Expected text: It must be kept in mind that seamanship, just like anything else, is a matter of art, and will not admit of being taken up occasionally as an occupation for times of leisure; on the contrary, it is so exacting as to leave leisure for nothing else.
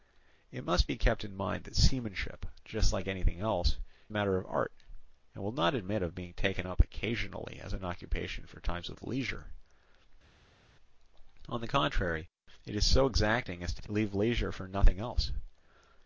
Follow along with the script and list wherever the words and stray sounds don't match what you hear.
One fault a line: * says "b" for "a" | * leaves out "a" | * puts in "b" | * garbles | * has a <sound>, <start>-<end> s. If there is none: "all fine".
* leaves out "is"
* puts in "to"